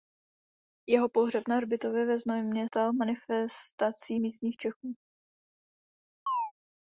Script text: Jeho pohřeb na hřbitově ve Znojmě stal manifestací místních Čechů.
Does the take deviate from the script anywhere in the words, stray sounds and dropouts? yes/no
yes